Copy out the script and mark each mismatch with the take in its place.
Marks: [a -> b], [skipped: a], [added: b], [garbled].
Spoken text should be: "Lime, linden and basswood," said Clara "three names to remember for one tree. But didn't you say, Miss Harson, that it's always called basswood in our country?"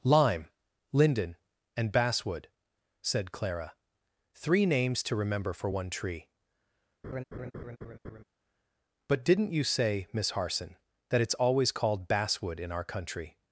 "Lime, linden and basswood," said Clara "three names to remember for one tree. But didn't you say, Miss Harson, that it's always called basswood in our country?"